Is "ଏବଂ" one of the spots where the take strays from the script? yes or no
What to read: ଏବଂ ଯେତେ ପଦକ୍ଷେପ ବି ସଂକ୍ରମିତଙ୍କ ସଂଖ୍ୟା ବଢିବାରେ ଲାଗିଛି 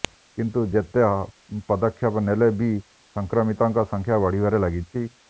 yes